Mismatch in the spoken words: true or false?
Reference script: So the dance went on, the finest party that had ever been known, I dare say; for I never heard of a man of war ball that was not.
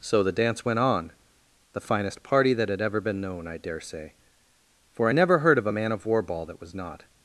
false